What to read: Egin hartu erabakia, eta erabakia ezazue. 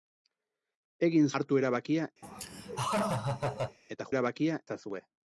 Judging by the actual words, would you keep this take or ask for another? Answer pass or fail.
pass